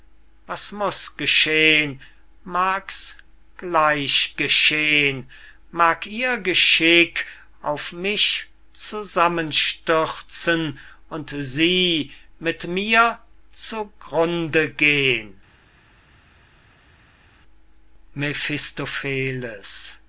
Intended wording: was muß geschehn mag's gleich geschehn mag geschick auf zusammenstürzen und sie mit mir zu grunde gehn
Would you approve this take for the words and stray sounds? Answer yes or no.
no